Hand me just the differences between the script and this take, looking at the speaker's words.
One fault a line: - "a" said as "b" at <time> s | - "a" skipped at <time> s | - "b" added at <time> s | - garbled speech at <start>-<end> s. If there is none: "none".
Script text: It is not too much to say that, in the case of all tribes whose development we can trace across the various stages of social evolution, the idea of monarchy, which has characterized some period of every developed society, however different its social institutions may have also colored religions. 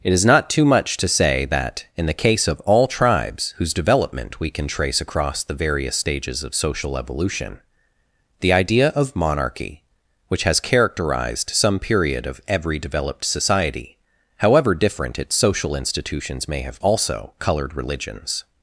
none